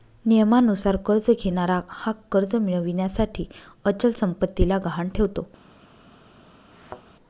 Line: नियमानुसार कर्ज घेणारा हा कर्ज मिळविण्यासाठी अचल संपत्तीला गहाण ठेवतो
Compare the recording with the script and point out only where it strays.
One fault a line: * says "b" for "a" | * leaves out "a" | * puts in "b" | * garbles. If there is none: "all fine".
all fine